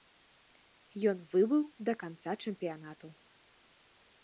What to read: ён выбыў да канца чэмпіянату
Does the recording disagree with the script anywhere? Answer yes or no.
no